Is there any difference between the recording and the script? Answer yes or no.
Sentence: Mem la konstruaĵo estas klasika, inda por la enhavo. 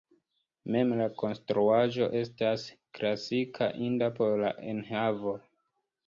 no